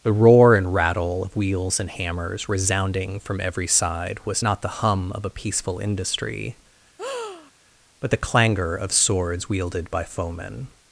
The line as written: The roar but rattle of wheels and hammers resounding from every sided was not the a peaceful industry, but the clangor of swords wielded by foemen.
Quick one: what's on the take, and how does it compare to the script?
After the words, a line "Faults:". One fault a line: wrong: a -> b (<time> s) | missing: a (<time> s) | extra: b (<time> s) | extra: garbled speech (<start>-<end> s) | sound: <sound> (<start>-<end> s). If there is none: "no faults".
The roar and rattle of wheels and hammers resounding from every side was not the hum of a peaceful industry, but the clangor of swords wielded by foemen.
Faults:
wrong: but -> and (0.6 s)
wrong: sided -> side (3.7 s)
extra: hum of (4.8 s)
sound: breath (7.0-7.5 s)